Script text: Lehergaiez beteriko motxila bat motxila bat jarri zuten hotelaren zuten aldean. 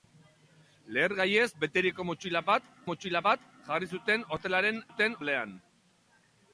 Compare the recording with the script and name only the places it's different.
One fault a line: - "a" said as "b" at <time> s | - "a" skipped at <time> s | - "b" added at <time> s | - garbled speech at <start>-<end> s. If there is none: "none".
none